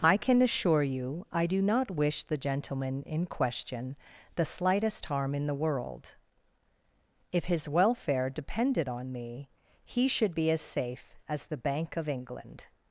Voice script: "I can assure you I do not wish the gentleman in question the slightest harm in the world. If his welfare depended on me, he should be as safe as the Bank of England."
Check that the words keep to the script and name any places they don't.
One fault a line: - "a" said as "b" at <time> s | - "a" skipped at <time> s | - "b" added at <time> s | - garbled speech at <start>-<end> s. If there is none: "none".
none